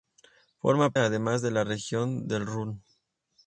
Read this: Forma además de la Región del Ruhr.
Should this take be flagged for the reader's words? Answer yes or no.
no